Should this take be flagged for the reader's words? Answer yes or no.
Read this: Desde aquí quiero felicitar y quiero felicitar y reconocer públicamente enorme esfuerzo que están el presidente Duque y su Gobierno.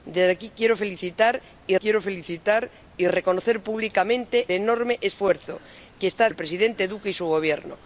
no